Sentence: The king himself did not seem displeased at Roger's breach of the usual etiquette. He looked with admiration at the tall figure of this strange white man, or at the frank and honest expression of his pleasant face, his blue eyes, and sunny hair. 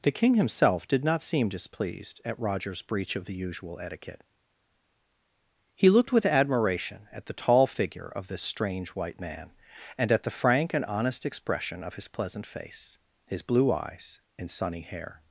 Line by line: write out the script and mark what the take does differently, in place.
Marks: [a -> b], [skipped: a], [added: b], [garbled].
The king himself did not seem displeased at Roger's breach of the usual etiquette. He looked with admiration at the tall figure of this strange white man, [or -> and] at the frank and honest expression of his pleasant face, his blue eyes, and sunny hair.